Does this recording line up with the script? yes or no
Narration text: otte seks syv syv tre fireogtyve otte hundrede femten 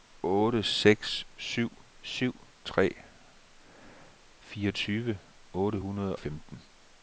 yes